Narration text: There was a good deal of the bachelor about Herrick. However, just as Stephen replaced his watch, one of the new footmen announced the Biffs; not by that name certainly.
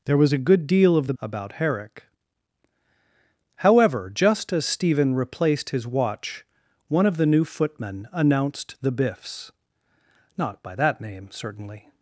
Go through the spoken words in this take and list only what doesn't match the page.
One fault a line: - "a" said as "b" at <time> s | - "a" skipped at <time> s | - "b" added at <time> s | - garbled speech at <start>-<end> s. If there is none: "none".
- "bachelor" skipped at 1.1 s